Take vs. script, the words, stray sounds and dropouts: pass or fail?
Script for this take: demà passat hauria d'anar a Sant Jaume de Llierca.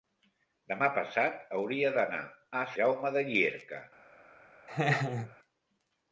fail